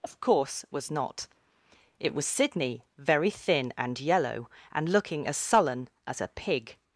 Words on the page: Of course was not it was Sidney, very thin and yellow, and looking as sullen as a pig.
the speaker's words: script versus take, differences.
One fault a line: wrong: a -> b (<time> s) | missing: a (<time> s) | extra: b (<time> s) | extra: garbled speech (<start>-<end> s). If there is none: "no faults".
no faults